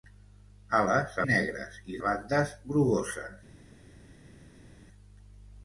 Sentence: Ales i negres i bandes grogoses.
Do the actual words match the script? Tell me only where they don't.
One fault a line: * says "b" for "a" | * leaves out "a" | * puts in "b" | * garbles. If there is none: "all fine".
all fine